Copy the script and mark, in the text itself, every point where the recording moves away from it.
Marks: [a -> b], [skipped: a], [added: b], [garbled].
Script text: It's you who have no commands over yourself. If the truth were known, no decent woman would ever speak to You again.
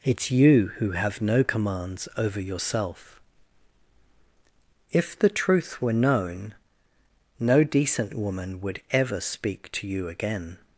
It's you who have no commands over yourself. If the truth were known, no decent woman would ever speak to You again.